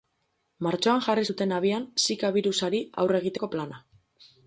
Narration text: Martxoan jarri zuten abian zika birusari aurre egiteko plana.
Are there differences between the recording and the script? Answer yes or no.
no